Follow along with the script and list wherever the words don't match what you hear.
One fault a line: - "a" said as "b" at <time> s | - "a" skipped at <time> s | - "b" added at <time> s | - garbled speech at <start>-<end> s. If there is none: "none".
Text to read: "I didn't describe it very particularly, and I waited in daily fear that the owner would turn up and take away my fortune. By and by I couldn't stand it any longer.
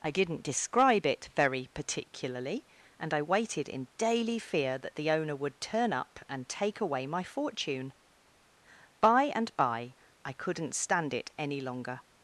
none